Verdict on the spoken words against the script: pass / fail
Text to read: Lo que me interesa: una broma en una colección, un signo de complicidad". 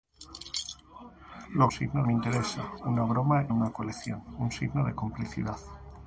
fail